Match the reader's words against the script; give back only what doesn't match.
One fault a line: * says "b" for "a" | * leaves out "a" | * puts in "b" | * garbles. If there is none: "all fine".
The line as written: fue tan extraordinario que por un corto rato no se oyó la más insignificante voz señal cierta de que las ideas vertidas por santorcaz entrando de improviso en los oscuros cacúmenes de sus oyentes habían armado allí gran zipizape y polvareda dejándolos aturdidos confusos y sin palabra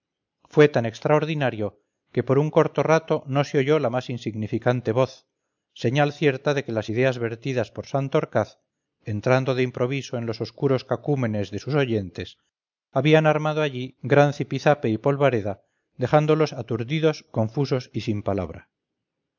all fine